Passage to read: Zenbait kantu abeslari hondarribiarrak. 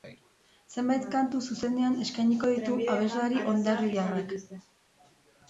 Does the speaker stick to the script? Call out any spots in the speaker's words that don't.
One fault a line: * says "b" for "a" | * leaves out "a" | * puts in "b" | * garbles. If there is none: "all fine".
* puts in "zuzenean eskainiko ditu"